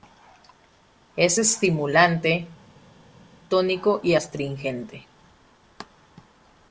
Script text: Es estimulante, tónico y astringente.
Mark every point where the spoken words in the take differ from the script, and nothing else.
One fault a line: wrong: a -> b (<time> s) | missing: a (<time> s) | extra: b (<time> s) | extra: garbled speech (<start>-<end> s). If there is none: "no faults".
no faults